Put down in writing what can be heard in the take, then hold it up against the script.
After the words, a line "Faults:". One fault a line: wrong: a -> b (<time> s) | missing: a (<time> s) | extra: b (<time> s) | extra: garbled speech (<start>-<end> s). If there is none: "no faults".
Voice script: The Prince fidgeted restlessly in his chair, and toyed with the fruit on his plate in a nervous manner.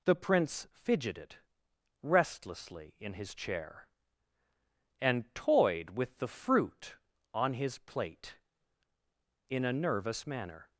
The Prince fidgeted restlessly in his chair, and toyed with the fruit on his plate in a nervous manner.
Faults:
no faults